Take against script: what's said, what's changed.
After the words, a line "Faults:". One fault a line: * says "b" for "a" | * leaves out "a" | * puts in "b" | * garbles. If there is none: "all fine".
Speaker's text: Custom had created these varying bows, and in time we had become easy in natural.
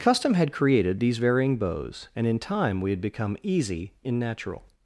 Custom had created these varying bows, and in time we had become easy in natural.
Faults:
all fine